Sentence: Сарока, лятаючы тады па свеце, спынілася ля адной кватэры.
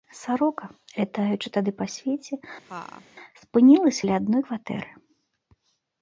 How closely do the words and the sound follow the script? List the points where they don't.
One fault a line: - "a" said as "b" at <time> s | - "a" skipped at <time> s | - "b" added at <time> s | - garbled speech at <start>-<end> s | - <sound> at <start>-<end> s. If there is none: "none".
- laugh at 2.7-3.1 s